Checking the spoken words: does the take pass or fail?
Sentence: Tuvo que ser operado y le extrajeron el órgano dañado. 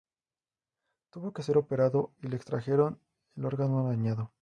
pass